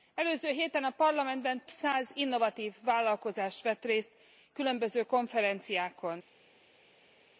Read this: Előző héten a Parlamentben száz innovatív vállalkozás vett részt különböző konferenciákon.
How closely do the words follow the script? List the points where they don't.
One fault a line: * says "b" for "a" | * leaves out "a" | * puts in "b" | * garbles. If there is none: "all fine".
all fine